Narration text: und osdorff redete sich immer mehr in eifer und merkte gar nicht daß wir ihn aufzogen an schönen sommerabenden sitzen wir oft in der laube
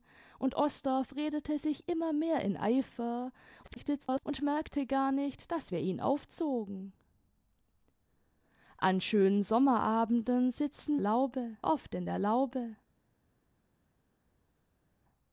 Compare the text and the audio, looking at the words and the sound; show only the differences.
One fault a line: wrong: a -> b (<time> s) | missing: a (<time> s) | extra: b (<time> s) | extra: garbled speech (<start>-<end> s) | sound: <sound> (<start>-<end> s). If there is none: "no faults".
extra: garbled speech (3.6-4.2 s)
wrong: wir -> laube (11.0 s)